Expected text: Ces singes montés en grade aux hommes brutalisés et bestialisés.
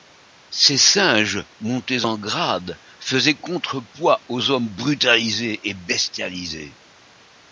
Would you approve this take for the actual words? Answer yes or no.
no